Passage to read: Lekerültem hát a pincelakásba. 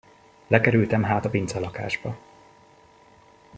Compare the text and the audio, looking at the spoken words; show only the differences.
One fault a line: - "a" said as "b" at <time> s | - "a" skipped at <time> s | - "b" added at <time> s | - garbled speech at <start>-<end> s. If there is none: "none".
none